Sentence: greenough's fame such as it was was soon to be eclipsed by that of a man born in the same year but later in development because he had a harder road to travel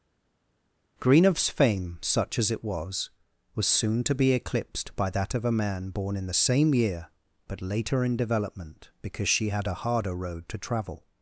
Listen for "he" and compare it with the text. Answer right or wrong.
wrong